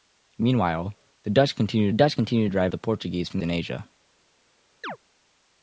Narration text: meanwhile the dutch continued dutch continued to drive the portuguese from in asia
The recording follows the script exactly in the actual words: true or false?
true